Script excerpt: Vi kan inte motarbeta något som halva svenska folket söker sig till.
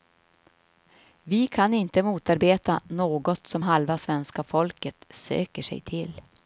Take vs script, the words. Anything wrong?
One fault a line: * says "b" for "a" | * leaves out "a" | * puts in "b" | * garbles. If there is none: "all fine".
all fine